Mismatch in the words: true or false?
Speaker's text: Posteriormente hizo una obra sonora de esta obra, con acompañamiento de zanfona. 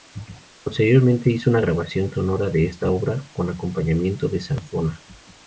true